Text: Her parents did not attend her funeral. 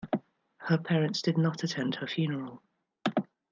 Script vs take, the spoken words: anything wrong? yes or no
no